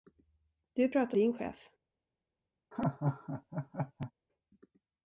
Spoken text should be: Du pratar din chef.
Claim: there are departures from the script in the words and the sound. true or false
true